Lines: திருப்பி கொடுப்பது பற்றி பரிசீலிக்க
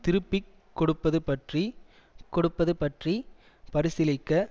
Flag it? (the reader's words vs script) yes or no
yes